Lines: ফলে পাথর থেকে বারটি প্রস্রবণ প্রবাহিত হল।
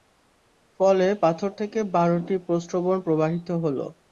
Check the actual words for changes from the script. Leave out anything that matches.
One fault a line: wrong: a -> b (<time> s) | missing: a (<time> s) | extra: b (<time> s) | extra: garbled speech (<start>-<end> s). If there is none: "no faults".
no faults